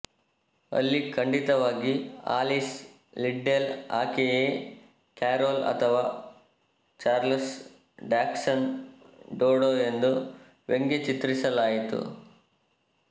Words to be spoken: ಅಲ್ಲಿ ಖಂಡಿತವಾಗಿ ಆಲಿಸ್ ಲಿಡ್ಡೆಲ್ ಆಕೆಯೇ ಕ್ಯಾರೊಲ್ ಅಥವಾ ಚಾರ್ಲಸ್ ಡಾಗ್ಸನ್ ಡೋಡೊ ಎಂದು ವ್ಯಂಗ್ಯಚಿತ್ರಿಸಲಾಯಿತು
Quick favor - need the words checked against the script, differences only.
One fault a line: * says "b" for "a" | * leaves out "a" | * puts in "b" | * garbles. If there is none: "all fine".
all fine